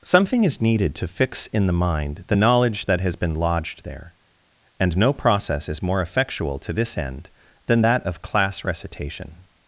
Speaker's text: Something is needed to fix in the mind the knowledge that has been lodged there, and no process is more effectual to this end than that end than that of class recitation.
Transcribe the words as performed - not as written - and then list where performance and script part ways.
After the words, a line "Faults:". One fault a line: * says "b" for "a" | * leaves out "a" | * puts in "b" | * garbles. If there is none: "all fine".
Something is needed to fix in the mind the knowledge that has been lodged there, and no process is more effectual to this end than that of class recitation.
Faults:
* leaves out "end than that"